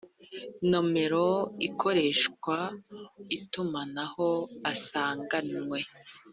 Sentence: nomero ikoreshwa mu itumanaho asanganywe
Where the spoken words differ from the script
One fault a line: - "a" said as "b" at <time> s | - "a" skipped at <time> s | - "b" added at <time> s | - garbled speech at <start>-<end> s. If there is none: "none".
- "mu" skipped at 2.6 s